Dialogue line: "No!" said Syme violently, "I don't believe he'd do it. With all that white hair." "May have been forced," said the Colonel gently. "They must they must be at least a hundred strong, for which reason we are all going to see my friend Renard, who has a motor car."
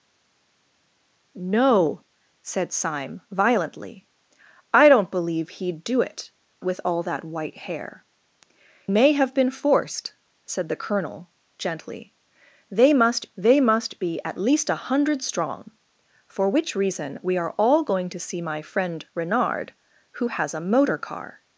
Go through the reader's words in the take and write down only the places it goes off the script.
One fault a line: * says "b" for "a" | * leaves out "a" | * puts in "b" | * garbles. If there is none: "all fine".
all fine